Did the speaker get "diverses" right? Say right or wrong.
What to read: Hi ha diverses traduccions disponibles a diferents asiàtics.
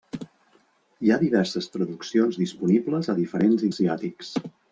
right